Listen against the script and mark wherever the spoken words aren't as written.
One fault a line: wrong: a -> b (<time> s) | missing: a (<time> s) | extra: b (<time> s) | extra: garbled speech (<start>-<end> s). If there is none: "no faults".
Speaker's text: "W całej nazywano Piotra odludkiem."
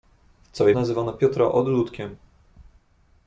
no faults